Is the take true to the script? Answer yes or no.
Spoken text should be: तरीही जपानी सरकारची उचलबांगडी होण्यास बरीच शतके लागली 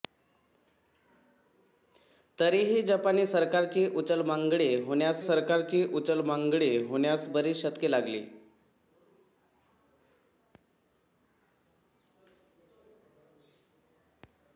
no